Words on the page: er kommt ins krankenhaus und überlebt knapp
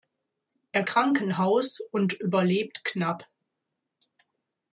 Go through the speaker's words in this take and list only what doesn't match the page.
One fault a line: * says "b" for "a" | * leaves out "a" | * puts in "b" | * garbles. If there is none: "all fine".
* leaves out "kommt ins"